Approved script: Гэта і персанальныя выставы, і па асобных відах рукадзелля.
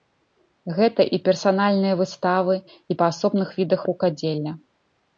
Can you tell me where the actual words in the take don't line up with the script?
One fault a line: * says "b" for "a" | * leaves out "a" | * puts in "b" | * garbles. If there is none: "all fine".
all fine